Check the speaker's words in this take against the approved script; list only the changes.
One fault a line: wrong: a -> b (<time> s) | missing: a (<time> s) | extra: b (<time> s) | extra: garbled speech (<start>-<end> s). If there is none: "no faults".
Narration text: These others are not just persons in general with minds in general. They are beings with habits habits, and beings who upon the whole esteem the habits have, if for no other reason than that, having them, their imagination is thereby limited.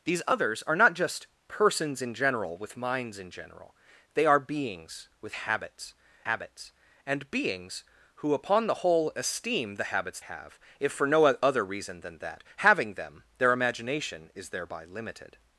no faults